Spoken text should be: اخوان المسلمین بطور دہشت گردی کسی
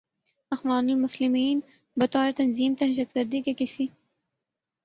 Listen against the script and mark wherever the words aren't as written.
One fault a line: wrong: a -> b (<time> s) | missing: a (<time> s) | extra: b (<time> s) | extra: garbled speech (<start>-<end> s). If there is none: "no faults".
extra: تنظیم (2.3 s)
extra: کے (3.4 s)